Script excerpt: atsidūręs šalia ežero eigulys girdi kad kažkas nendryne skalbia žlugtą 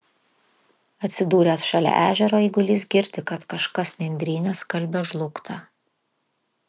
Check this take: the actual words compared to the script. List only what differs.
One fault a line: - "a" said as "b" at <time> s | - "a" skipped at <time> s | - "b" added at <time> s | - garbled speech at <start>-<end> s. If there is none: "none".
none